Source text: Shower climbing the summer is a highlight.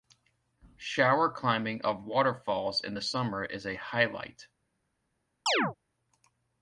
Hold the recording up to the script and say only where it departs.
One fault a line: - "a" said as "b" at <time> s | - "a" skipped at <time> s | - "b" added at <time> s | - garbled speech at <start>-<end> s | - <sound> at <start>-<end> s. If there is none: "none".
- "of waterfalls in" added at 1.8 s
- chirp at 5.5-5.8 s